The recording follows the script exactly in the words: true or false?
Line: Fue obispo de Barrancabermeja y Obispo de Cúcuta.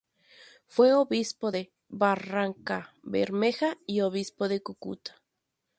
true